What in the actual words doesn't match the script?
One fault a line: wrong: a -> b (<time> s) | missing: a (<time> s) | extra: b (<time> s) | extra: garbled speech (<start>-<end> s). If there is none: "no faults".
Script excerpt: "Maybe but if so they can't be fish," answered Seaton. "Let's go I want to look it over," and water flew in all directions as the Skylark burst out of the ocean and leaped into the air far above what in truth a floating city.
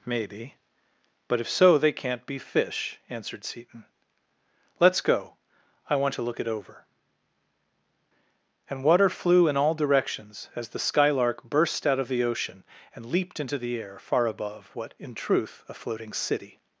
no faults